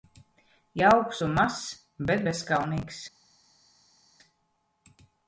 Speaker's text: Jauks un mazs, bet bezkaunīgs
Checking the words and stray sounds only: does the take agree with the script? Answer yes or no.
yes